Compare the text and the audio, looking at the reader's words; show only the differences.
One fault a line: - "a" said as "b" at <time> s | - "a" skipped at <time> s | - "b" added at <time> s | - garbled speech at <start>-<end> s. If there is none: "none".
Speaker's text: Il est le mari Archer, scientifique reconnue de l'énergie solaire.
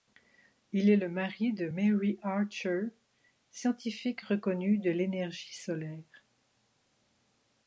- "de Mary" added at 1.5 s